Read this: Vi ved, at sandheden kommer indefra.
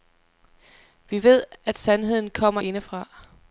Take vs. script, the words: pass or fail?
pass